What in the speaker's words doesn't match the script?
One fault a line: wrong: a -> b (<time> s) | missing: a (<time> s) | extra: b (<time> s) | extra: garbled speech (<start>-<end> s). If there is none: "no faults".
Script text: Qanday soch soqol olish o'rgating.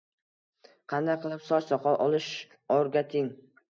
extra: qilib (1.3 s)